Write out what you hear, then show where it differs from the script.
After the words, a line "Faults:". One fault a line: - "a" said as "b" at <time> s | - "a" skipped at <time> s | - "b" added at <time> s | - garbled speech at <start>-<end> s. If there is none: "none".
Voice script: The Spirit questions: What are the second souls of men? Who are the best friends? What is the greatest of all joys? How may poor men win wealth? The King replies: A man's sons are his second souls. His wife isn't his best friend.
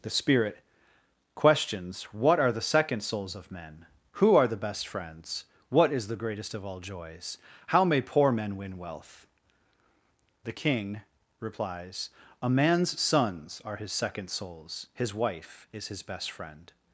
The Spirit questions: What are the second souls of men? Who are the best friends? What is the greatest of all joys? How may poor men win wealth? The King replies: A man's sons are his second souls. His wife is his best friend.
Faults:
- "isn't" said as "is" at 15.7 s